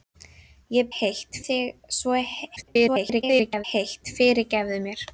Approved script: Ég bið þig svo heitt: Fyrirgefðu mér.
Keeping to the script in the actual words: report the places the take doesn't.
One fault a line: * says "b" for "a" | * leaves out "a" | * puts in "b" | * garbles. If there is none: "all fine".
* says "heitt" for "bið"
* garbles